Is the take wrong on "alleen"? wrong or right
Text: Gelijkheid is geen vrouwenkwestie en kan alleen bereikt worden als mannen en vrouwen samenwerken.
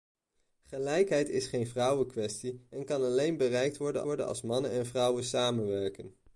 right